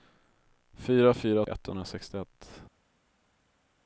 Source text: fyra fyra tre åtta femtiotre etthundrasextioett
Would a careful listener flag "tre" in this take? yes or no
yes